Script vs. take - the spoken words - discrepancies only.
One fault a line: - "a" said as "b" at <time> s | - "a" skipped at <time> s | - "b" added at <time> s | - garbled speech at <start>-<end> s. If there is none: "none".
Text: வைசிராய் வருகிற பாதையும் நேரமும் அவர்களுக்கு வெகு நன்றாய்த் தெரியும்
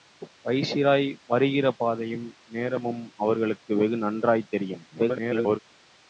- garbled speech at 4.9-5.6 s